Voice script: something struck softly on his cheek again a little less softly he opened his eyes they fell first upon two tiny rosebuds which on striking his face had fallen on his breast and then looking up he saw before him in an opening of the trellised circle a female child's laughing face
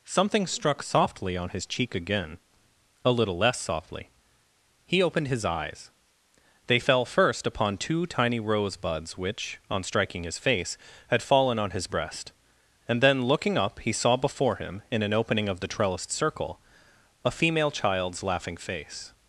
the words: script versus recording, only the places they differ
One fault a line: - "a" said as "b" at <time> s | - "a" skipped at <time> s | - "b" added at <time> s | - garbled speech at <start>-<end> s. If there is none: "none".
none